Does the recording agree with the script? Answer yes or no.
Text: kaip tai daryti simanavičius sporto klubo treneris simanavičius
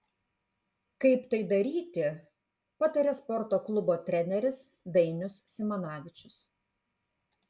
no